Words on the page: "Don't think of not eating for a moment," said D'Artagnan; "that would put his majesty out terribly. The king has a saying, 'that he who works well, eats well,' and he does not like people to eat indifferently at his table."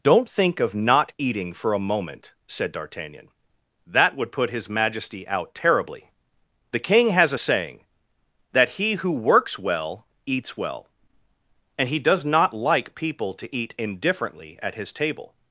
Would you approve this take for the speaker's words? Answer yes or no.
yes